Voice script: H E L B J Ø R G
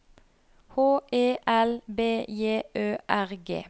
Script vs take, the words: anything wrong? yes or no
no